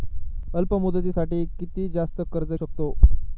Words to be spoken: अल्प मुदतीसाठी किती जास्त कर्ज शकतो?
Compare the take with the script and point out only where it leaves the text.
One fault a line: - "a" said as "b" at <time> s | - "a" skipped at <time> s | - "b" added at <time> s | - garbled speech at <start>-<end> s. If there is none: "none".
none